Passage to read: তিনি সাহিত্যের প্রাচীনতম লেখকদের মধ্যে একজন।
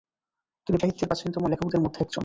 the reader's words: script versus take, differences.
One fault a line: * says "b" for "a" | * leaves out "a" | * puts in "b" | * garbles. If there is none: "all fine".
all fine